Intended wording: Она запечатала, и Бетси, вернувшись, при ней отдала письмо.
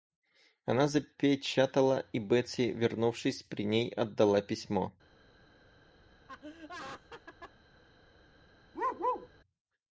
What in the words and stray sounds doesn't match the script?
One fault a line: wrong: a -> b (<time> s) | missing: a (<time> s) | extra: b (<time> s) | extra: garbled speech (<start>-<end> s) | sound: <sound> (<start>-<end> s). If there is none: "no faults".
sound: laugh (6.3-7.5 s)
sound: bark (8.7-9.3 s)